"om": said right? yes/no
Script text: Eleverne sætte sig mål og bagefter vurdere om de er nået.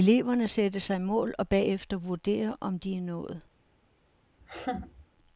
yes